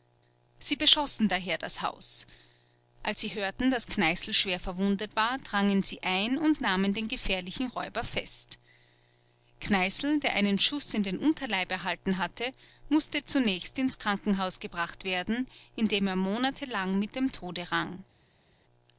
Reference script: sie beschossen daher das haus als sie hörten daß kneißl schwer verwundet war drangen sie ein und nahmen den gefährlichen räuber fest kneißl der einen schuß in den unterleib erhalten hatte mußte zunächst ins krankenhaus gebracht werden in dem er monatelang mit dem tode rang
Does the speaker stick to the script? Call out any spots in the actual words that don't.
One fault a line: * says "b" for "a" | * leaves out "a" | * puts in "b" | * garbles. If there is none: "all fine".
all fine